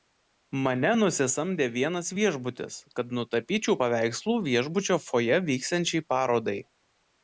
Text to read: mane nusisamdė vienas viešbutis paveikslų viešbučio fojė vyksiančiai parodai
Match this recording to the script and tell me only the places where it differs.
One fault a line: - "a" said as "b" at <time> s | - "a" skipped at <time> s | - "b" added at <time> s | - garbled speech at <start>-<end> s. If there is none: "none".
- "kad nutapyčiau" added at 3.0 s